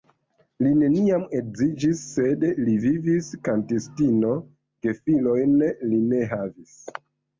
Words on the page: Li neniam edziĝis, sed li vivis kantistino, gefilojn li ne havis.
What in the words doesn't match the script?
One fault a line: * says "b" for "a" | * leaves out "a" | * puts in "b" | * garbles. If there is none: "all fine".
all fine